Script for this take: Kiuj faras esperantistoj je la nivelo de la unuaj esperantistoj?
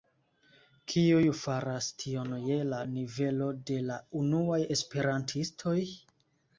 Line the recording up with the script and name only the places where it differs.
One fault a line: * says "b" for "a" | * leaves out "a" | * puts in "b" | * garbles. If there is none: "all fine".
* says "tion" for "esperantistoj"